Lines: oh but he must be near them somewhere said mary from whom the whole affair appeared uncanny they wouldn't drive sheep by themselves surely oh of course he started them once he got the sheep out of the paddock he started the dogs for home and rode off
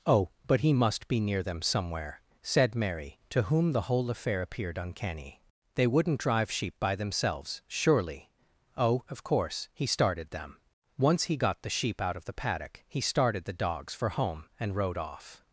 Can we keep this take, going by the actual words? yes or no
no